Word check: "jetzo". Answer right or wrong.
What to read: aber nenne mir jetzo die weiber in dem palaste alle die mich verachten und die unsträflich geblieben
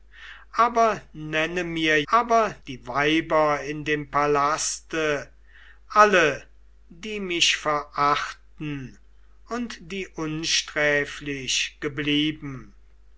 wrong